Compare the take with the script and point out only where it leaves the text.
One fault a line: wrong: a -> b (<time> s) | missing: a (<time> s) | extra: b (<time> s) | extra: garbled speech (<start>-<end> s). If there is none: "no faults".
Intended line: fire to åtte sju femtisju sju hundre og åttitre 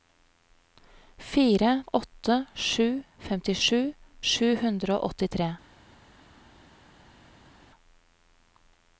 missing: to (1.8 s)